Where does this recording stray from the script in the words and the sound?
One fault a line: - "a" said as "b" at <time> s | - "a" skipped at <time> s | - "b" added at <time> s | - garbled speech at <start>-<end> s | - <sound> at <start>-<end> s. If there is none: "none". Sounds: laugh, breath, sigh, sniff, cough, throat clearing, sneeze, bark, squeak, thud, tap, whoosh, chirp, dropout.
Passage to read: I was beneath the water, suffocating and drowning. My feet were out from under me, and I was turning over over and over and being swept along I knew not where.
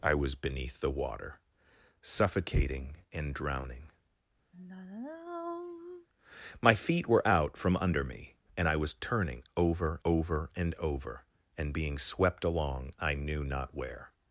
- sigh at 4.5-6.1 s